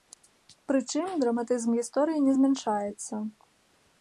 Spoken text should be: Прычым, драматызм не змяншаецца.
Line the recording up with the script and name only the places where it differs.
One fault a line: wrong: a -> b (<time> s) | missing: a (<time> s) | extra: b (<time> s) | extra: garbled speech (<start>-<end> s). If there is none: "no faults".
extra: гісторыі (1.8 s)